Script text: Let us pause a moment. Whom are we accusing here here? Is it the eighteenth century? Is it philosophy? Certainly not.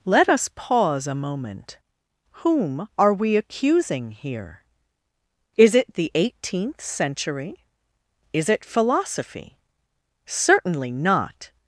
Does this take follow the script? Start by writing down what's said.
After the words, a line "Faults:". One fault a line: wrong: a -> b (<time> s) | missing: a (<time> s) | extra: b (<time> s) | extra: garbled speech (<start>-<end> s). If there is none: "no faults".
Let us pause a moment. Whom are we accusing here? Is it the eighteenth century? Is it philosophy? Certainly not.
Faults:
missing: here (4.6 s)